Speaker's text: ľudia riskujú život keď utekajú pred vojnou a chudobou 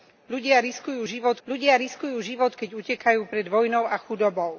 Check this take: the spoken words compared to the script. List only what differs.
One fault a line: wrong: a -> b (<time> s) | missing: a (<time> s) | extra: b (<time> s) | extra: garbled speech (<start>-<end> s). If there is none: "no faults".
extra: ľudia riskujú život (1.4 s)